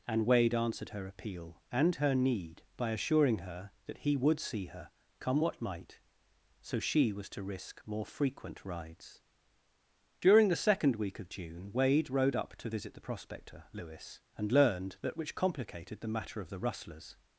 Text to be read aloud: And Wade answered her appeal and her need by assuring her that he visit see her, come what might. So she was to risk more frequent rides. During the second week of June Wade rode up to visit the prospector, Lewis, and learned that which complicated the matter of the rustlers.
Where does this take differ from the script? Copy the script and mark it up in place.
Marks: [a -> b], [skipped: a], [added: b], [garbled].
And Wade answered her appeal and her need by assuring her that he [visit -> would] see her, come what might. So she was to risk more frequent rides. During the second week of June Wade rode up to visit the prospector, Lewis, and learned that which complicated the matter of the rustlers.